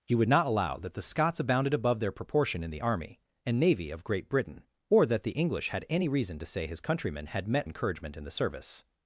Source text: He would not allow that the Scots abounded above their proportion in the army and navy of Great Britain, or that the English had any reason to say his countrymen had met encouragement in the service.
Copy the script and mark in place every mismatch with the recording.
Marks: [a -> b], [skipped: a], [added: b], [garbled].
He would not allow that the Scots abounded above their proportion in the army and navy of Great Britain, or that the English had any reason to say his countrymen had met encouragement in the service.